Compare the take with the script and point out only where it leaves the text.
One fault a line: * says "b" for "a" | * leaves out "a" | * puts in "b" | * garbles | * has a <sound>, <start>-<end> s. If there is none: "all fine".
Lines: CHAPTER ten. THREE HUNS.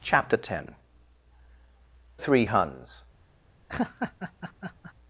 * has a laugh, 3.7-4.9 s